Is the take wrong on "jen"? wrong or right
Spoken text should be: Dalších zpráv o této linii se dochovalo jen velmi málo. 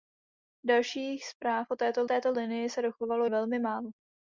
wrong